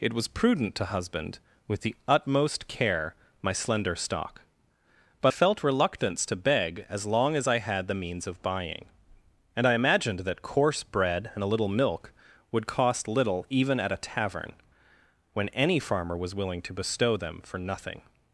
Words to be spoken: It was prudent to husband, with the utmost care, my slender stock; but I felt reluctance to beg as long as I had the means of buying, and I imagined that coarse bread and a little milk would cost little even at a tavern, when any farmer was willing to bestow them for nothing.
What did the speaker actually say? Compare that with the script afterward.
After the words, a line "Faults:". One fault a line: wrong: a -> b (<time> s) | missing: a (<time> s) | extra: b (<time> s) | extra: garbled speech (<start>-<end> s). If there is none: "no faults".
It was prudent to husband, with the utmost care, my slender stock; but felt reluctance to beg as long as I had the means of buying, and I imagined that coarse bread and a little milk would cost little even at a tavern, when any farmer was willing to bestow them for nothing.
Faults:
missing: I (5.3 s)